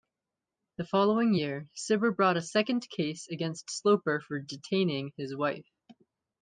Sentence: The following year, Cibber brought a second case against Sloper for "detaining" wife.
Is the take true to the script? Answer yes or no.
no